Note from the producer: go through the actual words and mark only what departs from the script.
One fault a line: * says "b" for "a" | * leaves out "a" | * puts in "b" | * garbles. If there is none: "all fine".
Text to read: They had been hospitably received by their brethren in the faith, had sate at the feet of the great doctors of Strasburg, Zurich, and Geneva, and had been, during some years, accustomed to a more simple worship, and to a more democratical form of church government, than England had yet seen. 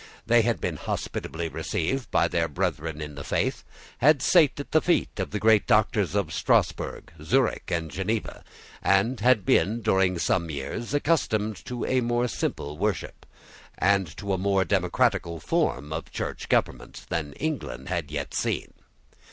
all fine